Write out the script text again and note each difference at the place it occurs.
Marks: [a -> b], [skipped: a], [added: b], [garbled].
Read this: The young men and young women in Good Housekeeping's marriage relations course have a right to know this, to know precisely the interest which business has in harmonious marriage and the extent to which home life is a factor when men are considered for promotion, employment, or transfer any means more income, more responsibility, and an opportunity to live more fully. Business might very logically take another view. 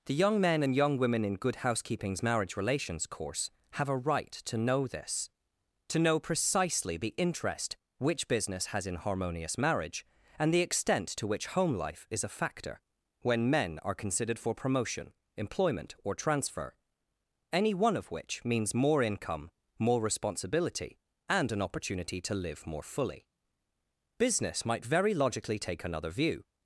The young men and young women in Good Housekeeping's marriage relations course have a right to know this, to know precisely the interest which business has in harmonious marriage and the extent to which home life is a factor when men are considered for promotion, employment, or transfer any [added: one of which] means more income, more responsibility, and an opportunity to live more fully. Business might very logically take another view.